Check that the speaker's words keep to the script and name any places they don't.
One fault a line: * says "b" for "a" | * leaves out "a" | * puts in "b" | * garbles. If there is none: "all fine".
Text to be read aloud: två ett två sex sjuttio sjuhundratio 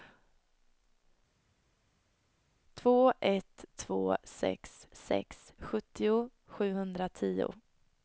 * puts in "sex"